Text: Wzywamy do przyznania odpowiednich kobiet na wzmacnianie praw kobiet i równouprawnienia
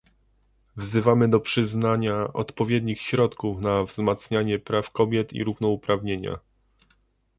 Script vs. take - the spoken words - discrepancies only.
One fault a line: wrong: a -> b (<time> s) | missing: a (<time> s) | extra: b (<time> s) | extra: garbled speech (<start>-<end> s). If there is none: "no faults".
wrong: kobiet -> środków (3.0 s)